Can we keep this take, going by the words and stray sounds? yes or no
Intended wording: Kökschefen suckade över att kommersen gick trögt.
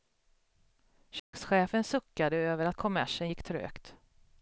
no